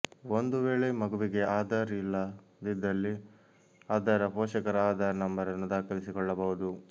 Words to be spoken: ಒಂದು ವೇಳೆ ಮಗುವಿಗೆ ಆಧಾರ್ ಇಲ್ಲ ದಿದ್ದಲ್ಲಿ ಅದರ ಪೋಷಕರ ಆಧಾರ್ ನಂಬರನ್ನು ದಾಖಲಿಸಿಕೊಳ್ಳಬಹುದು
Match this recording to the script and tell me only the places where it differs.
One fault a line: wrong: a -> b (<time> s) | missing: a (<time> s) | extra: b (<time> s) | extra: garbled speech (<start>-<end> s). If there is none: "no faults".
no faults